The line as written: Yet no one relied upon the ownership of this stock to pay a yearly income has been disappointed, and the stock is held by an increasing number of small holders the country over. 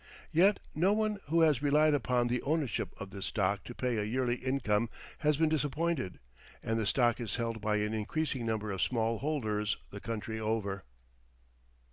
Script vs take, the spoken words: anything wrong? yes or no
yes